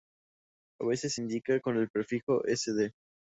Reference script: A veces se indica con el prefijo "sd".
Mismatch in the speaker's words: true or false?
true